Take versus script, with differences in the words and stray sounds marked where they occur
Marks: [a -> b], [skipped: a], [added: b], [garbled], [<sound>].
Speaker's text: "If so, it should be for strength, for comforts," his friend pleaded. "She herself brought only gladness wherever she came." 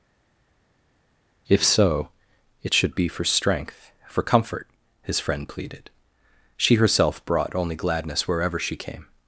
"If so, it should be for strength, for [comforts," -> comfort] his friend pleaded. "She herself brought only gladness wherever she came."